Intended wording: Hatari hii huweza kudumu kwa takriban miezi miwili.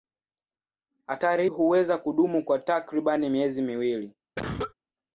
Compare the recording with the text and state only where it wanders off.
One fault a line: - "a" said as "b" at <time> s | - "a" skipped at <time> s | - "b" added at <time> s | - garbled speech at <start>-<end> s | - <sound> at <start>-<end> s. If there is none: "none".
- "hii" skipped at 1.5 s
- cough at 4.4-4.7 s